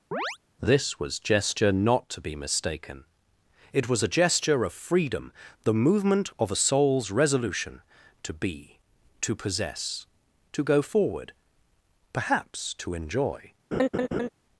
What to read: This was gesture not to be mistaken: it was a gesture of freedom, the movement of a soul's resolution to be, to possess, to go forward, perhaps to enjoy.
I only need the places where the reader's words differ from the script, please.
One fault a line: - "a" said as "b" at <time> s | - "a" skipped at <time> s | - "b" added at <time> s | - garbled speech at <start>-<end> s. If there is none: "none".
none